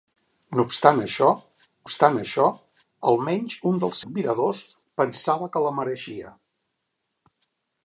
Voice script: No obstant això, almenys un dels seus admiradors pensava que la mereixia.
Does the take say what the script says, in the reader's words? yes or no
no